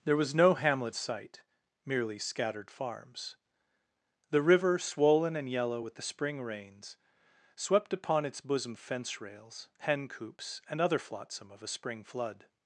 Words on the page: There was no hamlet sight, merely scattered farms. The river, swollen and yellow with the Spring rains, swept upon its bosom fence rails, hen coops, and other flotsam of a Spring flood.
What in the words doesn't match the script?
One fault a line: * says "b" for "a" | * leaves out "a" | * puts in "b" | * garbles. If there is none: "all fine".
all fine